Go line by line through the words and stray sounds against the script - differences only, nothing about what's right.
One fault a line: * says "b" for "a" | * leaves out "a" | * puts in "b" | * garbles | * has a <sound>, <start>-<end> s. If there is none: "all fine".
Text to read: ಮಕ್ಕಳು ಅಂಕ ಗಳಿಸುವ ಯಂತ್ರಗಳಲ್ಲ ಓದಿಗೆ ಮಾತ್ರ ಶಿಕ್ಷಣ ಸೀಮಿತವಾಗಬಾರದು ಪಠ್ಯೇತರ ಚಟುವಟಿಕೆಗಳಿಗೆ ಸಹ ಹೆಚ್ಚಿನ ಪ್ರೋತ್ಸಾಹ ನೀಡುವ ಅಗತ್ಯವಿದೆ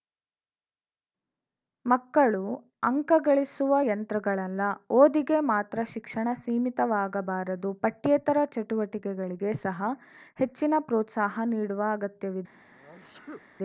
* has a sneeze, 12.7-13.4 s